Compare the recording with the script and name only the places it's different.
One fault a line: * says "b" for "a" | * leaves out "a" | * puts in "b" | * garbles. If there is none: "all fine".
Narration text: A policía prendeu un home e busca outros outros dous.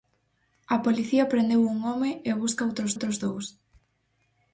all fine